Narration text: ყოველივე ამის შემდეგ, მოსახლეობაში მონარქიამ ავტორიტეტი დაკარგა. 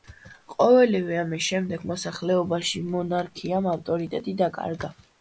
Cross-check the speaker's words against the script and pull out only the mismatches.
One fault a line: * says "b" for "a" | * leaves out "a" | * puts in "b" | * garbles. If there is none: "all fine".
all fine